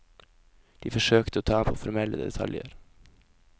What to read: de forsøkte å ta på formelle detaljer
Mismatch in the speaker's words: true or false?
false